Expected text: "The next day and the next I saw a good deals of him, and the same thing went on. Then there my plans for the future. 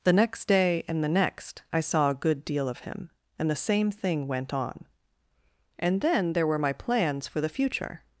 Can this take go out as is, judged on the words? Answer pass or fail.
fail